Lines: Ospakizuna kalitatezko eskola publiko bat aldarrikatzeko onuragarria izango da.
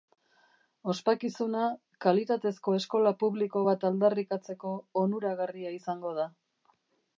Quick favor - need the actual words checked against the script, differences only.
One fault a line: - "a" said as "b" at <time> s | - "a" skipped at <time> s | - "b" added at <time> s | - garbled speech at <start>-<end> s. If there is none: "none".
none